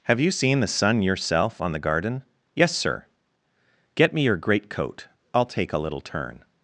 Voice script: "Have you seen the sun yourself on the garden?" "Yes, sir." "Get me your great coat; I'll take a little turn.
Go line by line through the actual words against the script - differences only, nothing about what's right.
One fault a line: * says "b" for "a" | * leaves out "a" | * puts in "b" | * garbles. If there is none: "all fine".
all fine